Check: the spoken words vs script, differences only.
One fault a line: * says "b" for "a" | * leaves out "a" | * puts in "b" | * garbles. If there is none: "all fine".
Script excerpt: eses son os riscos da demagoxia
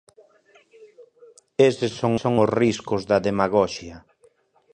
* puts in "son"